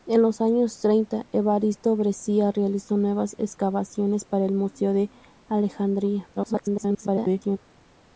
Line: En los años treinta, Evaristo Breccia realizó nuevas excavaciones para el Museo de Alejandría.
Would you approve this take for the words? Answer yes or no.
no